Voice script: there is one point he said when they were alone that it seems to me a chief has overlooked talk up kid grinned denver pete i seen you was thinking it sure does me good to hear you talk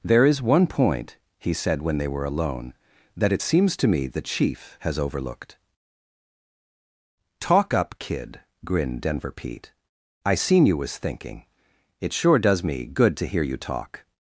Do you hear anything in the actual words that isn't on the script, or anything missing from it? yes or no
yes